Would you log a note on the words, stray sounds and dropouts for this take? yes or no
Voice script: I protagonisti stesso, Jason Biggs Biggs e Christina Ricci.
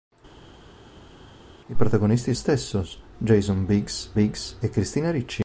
no